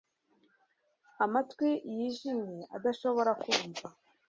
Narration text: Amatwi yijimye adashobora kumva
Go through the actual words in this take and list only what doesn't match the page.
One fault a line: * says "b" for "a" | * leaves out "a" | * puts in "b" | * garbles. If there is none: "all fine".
all fine